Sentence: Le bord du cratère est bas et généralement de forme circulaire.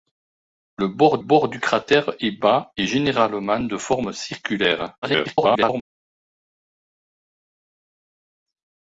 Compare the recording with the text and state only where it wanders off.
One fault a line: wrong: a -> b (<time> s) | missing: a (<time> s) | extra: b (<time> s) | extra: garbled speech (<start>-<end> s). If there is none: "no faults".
extra: bord (1.2 s)
extra: garbled speech (5.0-5.8 s)